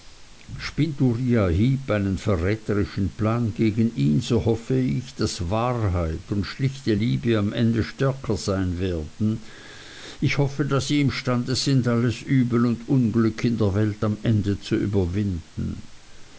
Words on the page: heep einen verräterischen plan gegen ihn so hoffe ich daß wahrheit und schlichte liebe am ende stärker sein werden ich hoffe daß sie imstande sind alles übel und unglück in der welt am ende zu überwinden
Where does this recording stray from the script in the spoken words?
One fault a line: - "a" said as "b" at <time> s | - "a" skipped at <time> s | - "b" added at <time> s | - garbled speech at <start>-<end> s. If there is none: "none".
none